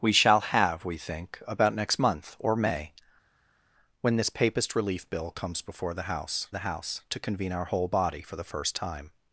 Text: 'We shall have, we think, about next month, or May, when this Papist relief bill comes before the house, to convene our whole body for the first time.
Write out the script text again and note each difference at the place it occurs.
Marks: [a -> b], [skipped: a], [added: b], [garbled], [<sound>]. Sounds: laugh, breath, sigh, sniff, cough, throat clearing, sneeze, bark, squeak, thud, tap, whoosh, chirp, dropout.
'We shall have, we think, about next month, or May, when this Papist relief bill comes before the house, [added: the house] to convene our whole body for the first time.